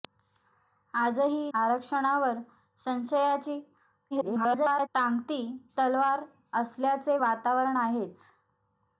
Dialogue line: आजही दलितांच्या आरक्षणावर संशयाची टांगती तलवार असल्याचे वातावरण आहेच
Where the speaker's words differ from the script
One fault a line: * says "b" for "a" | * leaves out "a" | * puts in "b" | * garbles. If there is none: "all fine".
* leaves out "दलितांच्या"
* garbles